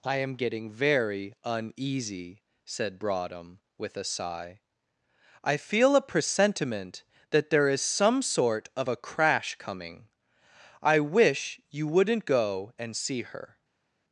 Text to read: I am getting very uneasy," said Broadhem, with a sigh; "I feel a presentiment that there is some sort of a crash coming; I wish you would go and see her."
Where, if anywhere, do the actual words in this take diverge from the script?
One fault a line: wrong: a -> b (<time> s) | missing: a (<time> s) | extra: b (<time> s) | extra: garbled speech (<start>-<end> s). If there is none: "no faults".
wrong: would -> wouldn't (11.9 s)